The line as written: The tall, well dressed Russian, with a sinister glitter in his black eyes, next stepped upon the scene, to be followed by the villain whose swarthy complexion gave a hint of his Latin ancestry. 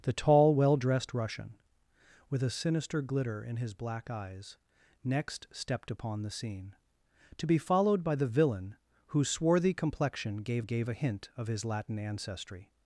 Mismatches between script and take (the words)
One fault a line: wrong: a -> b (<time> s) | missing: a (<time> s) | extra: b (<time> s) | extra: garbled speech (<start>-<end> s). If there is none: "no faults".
extra: gave (10.6 s)